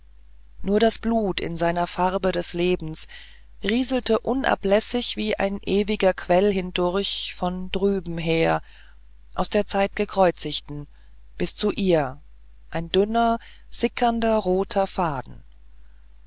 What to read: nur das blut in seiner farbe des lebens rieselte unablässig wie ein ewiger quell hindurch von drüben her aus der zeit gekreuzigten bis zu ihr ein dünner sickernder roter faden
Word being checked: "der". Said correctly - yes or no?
yes